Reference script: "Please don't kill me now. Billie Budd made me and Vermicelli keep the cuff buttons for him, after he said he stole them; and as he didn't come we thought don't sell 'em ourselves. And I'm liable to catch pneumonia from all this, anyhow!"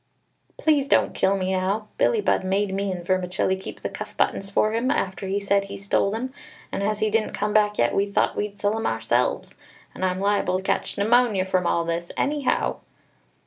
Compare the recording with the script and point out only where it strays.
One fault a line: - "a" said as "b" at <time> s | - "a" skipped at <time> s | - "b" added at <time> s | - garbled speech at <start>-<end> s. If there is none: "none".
- "back yet" added at 7.5 s
- "don't" said as "we'd" at 8.3 s